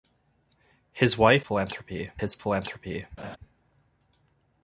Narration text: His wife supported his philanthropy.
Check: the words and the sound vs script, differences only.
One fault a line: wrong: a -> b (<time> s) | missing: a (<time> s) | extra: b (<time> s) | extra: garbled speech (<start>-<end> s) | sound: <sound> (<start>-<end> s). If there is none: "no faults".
wrong: supported -> philanthropy (1.4 s)
sound: laugh (3.2-3.4 s)